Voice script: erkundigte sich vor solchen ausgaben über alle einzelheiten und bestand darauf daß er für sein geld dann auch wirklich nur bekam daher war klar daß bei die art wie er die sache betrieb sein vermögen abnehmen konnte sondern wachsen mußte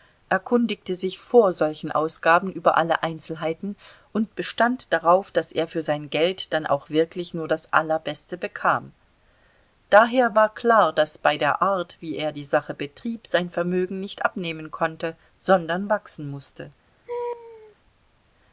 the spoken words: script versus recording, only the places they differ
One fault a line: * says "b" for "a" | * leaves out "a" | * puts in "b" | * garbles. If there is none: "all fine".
* puts in "das allerbeste"
* says "der" for "die"
* puts in "nicht"